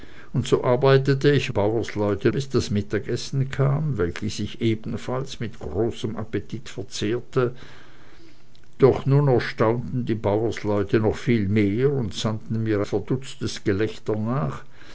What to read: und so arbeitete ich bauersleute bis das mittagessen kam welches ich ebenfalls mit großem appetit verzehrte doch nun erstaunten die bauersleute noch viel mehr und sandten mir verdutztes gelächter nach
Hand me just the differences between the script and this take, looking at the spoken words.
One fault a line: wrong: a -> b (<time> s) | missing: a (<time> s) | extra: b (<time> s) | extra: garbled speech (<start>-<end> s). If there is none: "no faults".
no faults